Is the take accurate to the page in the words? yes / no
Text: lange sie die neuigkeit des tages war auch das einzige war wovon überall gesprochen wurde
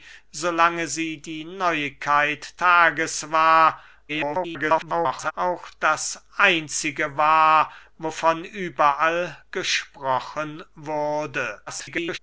no